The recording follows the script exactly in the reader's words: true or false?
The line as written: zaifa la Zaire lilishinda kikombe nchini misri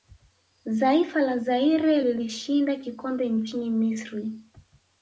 true